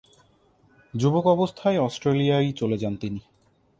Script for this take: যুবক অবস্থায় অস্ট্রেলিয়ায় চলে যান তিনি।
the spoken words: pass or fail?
pass